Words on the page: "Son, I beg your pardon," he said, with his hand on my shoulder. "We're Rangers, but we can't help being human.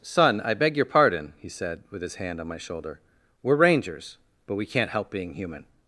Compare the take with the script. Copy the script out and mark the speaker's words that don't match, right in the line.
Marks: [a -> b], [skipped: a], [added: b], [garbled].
"Son, I beg your pardon," he said, with his hand on my shoulder. "We're Rangers, but we can't help being human.